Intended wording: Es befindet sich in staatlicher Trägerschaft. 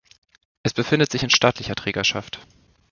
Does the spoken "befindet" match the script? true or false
true